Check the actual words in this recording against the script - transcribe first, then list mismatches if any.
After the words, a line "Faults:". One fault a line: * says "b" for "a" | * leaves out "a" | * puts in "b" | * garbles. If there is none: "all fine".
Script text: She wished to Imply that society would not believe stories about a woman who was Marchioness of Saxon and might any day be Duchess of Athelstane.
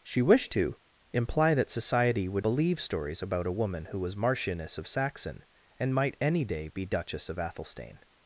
She wished to Imply that society would believe stories about a woman who was Marchioness of Saxon and might any day be Duchess of Athelstane.
Faults:
* leaves out "not"